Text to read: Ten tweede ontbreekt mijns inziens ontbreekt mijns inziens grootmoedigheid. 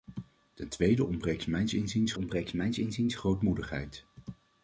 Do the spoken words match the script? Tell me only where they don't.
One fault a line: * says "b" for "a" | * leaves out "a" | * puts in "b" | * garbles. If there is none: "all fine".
all fine